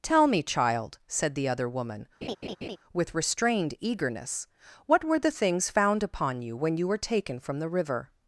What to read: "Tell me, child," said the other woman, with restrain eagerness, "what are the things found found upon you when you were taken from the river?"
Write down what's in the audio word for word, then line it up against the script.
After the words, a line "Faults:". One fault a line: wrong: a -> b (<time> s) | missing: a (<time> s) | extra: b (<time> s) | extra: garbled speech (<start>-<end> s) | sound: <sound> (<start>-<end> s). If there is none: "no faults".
"Tell me, child," said the other woman, with restrained eagerness, "what were the things found upon you when you were taken from the river?"
Faults:
sound: laugh (2.2-2.8 s)
wrong: restrain -> restrained (3.1 s)
wrong: are -> were (5.0 s)
missing: found (6.0 s)